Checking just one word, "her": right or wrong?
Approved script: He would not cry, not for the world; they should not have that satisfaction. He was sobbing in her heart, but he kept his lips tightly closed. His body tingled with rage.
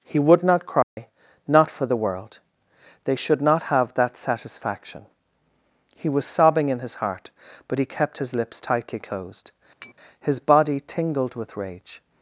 wrong